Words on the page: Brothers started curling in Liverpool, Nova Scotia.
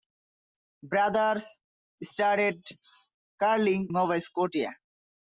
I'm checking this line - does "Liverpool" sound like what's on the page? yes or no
no